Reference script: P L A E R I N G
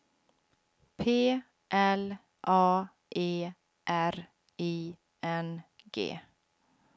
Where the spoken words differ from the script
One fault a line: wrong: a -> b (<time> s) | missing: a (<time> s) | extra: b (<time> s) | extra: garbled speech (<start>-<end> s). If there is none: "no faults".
no faults